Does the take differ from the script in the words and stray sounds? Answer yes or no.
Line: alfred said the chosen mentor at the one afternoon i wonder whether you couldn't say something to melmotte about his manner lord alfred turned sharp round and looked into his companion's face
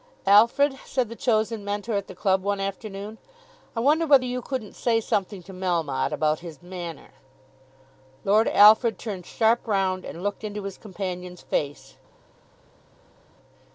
yes